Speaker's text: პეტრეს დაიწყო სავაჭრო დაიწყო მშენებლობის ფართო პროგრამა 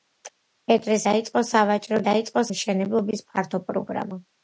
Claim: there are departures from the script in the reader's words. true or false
false